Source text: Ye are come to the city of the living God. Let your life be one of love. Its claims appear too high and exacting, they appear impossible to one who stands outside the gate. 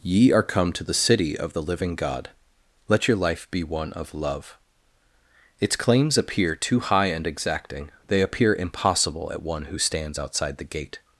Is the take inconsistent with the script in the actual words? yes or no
yes